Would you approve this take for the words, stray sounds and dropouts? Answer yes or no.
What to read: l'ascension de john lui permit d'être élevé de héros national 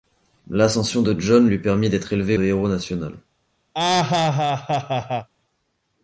no